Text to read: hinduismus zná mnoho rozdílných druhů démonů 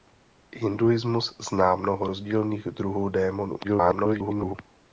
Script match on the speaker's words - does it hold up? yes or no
no